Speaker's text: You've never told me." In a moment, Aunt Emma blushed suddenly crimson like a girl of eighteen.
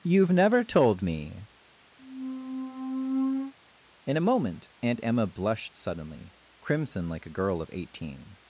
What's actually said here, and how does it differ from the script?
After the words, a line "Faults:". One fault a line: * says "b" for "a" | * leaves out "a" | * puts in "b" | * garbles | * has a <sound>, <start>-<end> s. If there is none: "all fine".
You've never told me." In a moment, Aunt Emma blushed suddenly crimson like a girl of eighteen.
Faults:
* has a squeak, 2.0-3.5 s